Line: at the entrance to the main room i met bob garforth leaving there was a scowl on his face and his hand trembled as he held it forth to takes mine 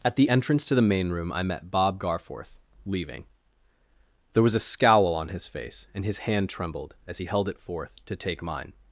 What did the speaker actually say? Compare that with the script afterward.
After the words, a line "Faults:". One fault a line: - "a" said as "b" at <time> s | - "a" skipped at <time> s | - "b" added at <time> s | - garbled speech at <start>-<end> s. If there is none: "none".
at the entrance to the main room i met bob garforth leaving there was a scowl on his face and his hand trembled as he held it forth to take mine
Faults:
- "takes" said as "take" at 8.2 s